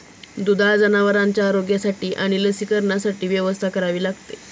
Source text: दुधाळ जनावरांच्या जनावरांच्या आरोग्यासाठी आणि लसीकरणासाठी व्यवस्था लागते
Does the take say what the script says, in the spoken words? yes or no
no